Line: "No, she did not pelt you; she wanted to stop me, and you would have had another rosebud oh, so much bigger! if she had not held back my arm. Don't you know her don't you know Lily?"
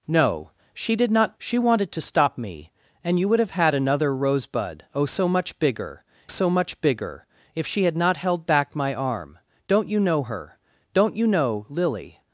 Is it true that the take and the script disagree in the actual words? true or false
true